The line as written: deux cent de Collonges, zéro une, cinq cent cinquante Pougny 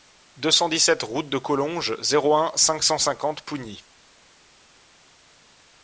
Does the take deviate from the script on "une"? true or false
true